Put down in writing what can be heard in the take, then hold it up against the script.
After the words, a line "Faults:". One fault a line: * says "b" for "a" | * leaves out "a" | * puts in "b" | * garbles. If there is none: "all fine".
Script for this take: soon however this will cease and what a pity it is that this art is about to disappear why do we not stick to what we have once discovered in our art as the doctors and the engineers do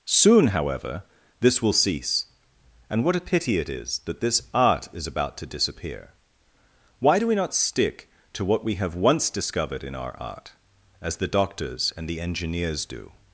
soon however this will cease and what a pity it is that this art is about to disappear why do we not stick to what we have once discovered in our art as the doctors and the engineers do
Faults:
all fine